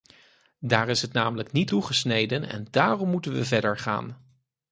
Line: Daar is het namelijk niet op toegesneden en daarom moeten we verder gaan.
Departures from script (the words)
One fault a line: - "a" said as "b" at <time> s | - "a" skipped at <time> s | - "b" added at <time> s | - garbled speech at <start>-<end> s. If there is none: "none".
- "op" skipped at 1.7 s